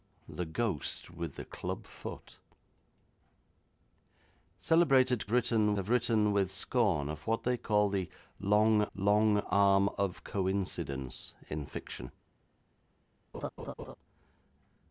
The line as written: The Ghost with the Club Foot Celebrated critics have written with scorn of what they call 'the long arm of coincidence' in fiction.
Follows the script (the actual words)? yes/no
no